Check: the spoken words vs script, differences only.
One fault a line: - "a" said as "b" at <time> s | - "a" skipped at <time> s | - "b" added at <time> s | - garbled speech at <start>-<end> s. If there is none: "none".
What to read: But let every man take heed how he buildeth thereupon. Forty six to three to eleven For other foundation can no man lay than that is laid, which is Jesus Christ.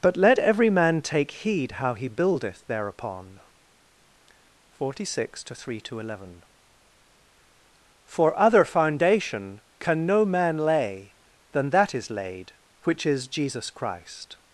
none